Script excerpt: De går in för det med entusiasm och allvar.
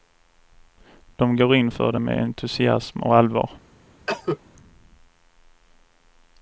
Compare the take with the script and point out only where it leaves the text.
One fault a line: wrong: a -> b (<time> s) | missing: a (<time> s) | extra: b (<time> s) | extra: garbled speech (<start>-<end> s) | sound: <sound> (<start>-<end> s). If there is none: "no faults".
sound: cough (4.1-4.4 s)